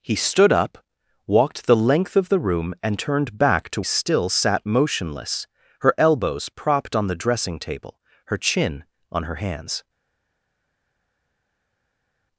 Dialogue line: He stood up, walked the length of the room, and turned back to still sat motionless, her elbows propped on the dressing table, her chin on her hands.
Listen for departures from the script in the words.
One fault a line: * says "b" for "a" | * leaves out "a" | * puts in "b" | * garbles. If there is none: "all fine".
all fine